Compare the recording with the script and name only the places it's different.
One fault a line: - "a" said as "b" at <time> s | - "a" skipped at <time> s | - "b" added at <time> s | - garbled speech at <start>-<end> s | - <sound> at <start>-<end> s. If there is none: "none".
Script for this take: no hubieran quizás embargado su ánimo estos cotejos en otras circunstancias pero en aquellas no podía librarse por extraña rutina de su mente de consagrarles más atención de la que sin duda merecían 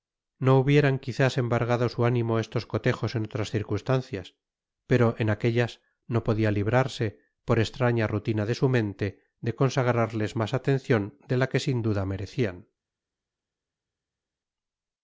none